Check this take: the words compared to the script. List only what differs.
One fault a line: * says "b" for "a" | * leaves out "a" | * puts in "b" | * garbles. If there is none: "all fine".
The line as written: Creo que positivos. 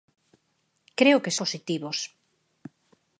all fine